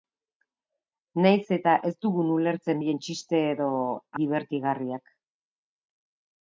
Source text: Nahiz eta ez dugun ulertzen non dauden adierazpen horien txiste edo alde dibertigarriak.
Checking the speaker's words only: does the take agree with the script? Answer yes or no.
no